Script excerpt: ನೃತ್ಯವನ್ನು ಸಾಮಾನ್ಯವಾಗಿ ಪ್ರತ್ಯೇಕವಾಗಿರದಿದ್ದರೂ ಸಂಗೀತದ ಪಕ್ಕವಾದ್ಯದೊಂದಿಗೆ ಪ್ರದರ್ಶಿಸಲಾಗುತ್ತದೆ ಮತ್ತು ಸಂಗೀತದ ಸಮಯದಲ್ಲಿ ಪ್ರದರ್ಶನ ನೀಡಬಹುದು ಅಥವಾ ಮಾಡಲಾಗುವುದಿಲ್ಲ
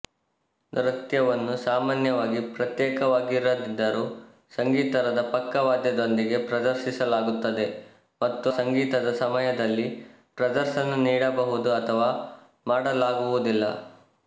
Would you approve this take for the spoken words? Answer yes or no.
yes